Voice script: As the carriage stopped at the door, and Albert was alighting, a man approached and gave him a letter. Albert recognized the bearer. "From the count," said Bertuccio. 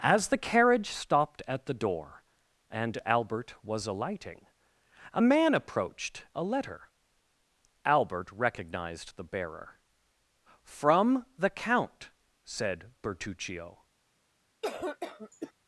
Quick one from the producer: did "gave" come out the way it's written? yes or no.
no